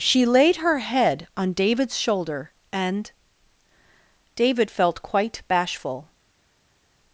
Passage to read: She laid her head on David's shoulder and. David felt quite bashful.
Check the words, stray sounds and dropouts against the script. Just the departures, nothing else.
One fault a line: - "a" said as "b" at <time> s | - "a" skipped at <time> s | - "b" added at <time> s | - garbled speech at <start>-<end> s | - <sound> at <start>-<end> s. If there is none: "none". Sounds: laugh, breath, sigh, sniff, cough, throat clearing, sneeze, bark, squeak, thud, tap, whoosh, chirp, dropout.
none